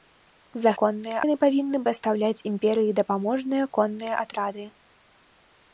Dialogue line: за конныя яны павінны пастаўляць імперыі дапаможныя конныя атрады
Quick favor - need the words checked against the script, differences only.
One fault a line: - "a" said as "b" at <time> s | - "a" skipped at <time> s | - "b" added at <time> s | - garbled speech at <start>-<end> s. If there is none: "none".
none